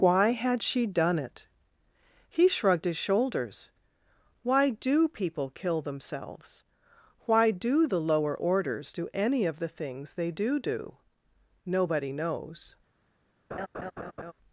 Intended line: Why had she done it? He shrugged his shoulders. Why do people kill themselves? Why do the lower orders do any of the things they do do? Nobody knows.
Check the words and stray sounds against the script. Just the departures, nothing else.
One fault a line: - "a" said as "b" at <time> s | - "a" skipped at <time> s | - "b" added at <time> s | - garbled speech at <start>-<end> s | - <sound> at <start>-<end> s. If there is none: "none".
- laugh at 13.5-14.3 s